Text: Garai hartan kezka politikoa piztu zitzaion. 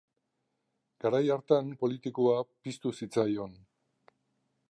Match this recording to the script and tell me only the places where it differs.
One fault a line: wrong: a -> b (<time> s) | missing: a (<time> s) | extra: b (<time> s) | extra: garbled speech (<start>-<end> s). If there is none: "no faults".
missing: kezka (1.7 s)